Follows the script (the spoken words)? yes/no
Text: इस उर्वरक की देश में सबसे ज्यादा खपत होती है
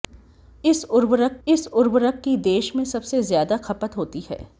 no